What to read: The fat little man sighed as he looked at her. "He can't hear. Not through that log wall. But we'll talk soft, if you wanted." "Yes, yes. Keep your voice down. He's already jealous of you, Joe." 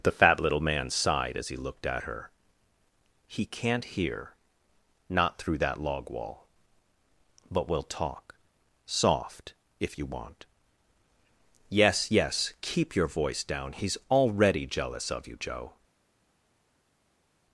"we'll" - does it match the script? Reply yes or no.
yes